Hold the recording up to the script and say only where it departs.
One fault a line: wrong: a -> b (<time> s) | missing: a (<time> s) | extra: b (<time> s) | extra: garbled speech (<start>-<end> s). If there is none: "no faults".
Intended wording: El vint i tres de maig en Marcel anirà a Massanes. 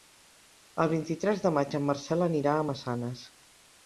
no faults